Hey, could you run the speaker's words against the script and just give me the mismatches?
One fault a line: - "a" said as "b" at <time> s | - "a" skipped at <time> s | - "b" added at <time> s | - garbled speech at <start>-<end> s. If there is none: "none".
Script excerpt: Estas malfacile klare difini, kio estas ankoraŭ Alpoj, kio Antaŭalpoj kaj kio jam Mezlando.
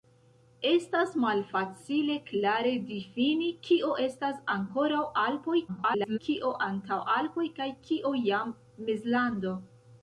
- garbled speech at 5.7-6.2 s